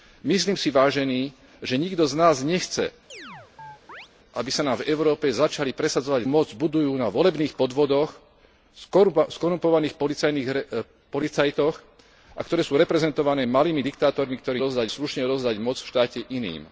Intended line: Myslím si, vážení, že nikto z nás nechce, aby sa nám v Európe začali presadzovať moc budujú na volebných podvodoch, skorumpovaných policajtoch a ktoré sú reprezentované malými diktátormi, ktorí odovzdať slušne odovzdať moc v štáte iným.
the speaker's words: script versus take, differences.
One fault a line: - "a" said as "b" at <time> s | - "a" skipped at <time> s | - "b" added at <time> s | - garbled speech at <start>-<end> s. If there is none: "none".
none